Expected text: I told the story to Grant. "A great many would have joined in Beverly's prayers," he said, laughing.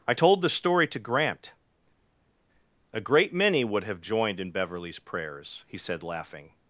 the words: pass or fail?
pass